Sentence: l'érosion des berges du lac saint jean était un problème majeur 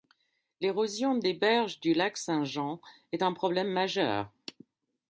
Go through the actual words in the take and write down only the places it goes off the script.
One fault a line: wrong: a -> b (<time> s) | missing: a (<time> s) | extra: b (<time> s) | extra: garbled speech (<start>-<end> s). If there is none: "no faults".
wrong: était -> est (3.1 s)